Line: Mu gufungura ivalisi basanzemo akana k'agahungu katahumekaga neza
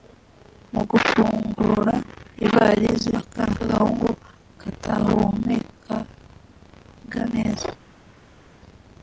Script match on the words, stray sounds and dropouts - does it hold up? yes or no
no